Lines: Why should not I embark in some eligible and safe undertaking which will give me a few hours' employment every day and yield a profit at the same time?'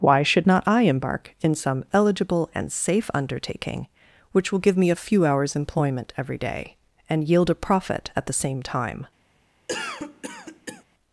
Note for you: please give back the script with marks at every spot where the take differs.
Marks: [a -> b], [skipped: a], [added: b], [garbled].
Why should not I embark in some eligible and safe undertaking which will give me a few hours' employment every day and yield a profit at the same time?'